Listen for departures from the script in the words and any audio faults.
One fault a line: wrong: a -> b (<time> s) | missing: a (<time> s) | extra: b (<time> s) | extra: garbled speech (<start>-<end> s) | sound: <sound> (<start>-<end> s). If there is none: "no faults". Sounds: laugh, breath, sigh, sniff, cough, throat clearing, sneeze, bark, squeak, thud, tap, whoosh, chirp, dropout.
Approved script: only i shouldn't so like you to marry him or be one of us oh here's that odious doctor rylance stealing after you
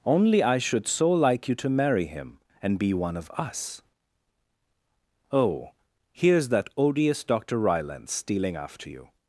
wrong: shouldn't -> should (0.6 s)
wrong: or -> and (2.6 s)